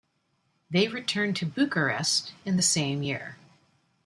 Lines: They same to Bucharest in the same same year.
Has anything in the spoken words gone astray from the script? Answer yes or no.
yes